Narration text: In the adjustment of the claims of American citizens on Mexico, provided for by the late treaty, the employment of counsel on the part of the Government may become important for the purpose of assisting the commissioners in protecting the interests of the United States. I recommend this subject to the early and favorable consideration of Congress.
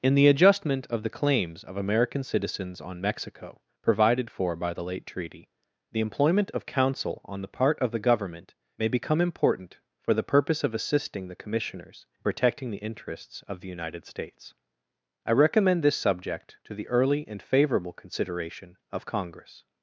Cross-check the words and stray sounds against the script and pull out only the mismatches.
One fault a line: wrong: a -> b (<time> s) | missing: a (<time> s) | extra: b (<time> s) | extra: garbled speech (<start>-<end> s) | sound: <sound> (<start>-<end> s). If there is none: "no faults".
no faults